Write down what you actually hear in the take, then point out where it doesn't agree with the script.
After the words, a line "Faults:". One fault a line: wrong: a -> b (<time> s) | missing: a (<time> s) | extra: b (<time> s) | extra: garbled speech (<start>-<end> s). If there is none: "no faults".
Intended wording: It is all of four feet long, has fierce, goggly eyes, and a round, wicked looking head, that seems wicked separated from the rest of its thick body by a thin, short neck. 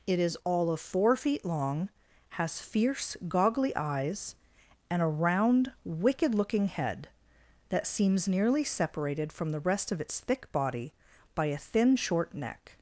It is all of four feet long, has fierce, goggly eyes, and a round, wicked looking head, that seems nearly separated from the rest of its thick body by a thin, short neck.
Faults:
wrong: wicked -> nearly (8.3 s)